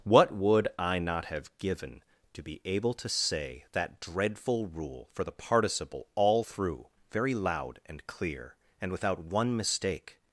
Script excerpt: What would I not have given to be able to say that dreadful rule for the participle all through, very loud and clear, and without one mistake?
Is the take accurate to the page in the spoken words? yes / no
yes